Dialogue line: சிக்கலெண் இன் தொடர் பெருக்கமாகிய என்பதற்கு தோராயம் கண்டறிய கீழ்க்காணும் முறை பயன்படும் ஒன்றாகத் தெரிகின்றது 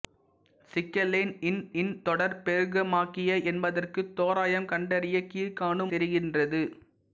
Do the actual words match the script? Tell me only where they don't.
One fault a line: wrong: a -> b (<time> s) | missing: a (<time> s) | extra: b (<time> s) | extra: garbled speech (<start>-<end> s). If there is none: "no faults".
extra: இன் (1.7 s)
missing: முறை பயன்படும் ஒன்றாகத் (5.9 s)